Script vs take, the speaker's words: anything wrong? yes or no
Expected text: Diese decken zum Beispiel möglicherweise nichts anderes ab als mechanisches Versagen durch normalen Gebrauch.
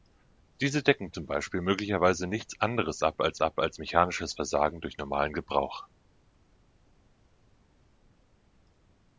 yes